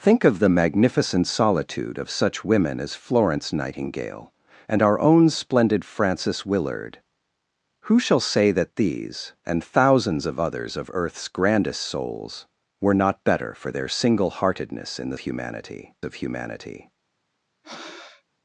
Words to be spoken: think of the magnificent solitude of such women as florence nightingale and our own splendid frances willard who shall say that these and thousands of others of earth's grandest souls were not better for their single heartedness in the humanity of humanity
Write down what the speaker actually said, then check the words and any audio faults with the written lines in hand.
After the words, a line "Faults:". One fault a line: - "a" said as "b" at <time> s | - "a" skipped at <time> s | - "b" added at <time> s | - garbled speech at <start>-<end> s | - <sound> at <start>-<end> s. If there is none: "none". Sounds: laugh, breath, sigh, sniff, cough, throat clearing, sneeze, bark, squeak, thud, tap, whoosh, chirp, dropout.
think of the magnificent solitude of such women as florence nightingale and our own splendid frances willard who shall say that these and thousands of others of earth's grandest souls were not better for their single heartedness in the humanity of humanity
Faults:
- breath at 17.6-18.2 s